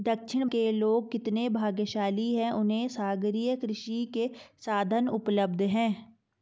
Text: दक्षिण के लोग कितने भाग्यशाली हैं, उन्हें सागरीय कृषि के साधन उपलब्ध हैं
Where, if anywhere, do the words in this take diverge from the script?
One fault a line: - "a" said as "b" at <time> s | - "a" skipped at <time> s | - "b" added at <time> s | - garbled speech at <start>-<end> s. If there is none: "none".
none